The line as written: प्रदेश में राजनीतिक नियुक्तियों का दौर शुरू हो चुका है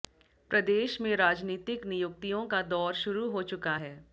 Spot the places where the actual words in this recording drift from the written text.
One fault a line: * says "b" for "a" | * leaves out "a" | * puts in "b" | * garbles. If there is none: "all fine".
all fine